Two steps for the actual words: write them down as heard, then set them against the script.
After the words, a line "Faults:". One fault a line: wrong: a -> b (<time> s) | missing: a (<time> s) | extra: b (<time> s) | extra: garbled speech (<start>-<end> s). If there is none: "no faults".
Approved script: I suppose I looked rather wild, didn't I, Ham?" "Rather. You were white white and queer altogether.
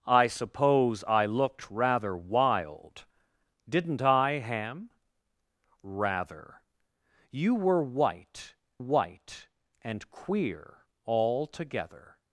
I suppose I looked rather wild, didn't I, Ham?" "Rather. You were white white and queer altogether.
Faults:
no faults